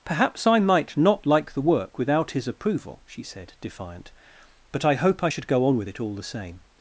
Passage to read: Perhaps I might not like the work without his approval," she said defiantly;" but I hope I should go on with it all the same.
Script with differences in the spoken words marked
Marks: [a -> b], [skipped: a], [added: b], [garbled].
Perhaps I might not like the work without his approval," she said [defiantly;" -> defiant] but I hope I should go on with it all the same.